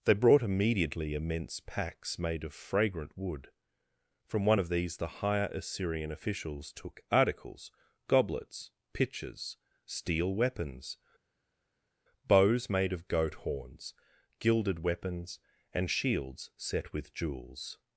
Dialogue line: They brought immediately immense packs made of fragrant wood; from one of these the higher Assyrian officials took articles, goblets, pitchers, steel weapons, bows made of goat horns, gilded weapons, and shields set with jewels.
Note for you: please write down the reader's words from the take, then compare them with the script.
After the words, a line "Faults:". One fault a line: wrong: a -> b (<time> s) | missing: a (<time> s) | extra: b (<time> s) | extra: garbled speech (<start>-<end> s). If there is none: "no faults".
They brought immediately immense packs made of fragrant wood; from one of these the higher Assyrian officials took articles, goblets, pitchers, steel weapons, bows made of goat horns, gilded weapons, and shields set with jewels.
Faults:
no faults